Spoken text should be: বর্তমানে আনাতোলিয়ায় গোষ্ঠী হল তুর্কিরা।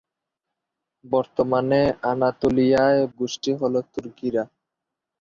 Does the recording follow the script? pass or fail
pass